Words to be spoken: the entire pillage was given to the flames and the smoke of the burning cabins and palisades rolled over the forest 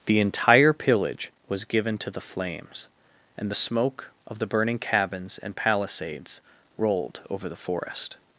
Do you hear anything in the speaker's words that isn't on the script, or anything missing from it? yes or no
no